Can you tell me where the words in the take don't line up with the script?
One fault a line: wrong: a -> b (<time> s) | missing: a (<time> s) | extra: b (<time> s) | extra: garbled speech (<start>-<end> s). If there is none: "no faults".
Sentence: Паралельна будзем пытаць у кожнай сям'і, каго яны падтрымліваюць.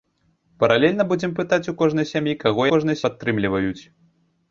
wrong: яны -> кожнай (2.8 s)